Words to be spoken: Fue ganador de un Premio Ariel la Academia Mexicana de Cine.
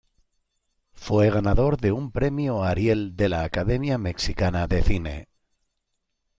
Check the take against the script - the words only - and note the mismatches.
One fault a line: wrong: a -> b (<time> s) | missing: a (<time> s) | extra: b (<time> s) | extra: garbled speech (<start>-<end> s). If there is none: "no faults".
extra: de (3.1 s)